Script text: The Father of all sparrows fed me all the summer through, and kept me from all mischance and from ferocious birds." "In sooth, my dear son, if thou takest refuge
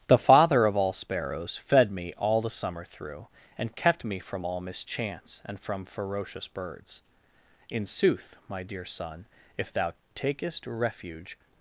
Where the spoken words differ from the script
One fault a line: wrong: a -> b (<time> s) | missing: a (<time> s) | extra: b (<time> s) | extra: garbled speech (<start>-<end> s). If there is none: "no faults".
no faults